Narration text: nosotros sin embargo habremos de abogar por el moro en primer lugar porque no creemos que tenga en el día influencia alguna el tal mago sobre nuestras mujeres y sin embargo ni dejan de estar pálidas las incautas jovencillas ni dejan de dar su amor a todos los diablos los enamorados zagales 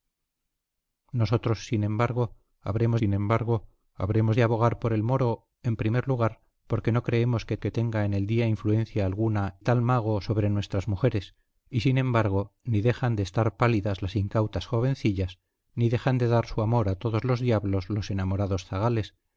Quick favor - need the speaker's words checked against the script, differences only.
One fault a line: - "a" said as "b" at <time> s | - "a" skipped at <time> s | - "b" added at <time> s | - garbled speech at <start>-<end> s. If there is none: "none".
- "sin embargo habremos" added at 3.0 s
- "que" added at 7.6 s
- "el" skipped at 9.6 s